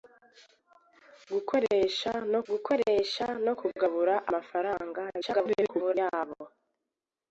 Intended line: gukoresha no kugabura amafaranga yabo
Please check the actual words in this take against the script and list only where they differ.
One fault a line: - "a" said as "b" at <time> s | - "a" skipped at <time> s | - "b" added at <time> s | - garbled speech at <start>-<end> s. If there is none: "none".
- "gukoresha no" added at 2.5 s
- garbled speech at 5.2-5.9 s